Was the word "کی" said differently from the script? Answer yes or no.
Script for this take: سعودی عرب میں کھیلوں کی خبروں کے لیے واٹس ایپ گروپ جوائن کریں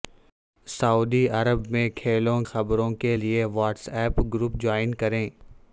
yes